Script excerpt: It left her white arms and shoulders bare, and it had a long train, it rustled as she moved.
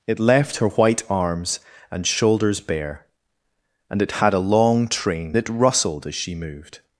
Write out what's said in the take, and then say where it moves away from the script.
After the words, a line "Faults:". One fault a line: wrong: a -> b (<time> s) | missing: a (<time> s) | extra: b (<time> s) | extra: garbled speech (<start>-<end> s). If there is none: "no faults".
It left her white arms and shoulders bare, and it had a long train, it rustled as she moved.
Faults:
no faults